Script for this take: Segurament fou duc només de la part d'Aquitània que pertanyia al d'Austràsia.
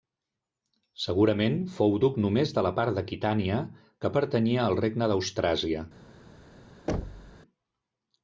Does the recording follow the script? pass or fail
fail